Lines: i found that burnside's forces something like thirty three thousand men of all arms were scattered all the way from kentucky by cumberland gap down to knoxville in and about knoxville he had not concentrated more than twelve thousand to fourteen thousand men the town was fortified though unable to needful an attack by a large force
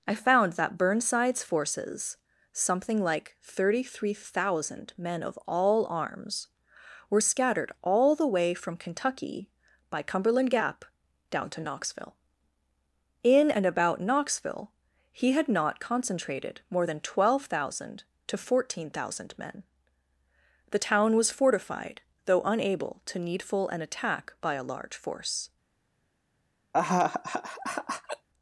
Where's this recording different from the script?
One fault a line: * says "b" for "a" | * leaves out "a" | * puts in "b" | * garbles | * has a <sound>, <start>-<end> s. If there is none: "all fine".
* has a laugh, 26.7-28.3 s